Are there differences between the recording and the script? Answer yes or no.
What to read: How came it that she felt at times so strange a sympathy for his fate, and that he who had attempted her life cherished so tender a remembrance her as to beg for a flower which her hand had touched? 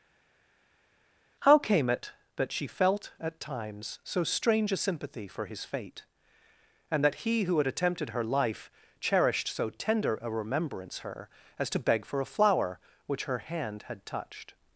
no